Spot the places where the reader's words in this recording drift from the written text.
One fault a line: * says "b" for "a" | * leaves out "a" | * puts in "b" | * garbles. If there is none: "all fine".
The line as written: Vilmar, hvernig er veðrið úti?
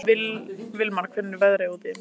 all fine